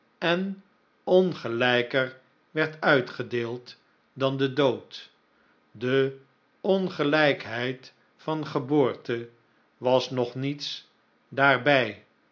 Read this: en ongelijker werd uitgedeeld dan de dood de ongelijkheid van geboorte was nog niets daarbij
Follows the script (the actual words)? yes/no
yes